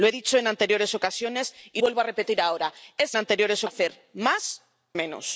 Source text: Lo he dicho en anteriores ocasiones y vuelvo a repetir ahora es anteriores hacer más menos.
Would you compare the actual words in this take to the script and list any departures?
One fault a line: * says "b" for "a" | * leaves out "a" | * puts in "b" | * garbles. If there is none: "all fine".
all fine